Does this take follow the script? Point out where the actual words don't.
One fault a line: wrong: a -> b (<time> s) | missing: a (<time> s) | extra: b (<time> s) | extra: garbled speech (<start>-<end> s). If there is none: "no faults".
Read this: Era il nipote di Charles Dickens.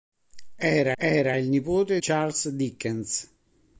extra: era (1.0 s)
missing: di (2.0 s)